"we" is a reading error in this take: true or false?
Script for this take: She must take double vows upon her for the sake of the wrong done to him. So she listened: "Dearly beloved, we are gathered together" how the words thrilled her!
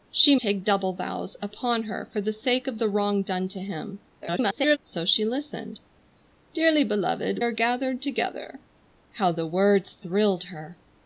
true